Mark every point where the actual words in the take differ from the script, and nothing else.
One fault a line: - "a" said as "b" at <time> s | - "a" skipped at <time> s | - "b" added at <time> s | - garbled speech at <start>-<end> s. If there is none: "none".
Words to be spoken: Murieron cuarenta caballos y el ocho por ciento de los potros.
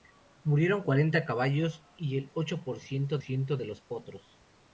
- "ciento" added at 3.2 s